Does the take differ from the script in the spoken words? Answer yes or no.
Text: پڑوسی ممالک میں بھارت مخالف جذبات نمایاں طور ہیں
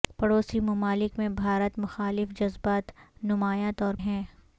no